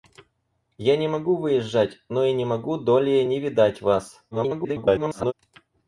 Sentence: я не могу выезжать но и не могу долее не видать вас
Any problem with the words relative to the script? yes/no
yes